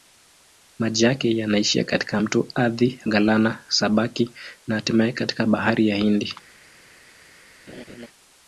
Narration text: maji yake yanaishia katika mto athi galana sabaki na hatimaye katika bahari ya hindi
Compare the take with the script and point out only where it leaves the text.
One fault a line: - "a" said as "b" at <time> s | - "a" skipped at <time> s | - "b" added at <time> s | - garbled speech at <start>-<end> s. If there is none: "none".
none